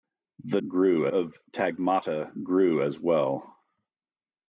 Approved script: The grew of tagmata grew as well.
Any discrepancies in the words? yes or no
no